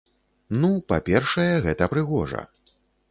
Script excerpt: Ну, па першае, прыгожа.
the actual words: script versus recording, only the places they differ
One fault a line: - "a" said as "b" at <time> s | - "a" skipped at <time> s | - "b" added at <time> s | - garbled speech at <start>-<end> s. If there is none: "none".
- "гэта" added at 1.6 s